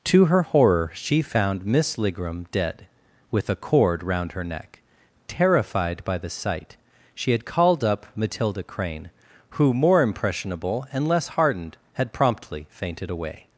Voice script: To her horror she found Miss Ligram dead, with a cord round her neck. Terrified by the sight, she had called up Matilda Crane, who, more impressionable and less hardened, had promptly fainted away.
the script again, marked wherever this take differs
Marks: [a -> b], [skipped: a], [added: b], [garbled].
To her horror she found Miss Ligram dead, with a cord round her neck. Terrified by the sight, she had called up Matilda Crane, who, more impressionable and less hardened, had promptly fainted away.